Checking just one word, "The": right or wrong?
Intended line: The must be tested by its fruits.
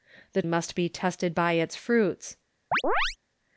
right